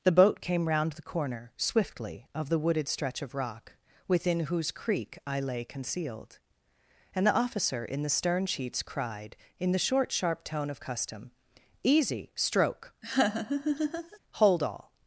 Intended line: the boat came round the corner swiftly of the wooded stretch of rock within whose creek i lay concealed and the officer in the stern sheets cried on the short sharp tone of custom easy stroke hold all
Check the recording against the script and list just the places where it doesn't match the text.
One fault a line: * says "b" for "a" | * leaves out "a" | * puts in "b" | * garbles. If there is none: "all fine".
* says "in" for "on"